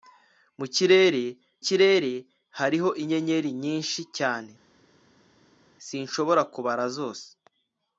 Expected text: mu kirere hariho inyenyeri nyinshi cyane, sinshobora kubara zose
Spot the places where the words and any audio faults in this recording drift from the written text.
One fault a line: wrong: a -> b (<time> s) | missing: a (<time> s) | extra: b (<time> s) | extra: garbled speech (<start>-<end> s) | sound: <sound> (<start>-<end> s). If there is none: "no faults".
extra: kirere (1.7 s)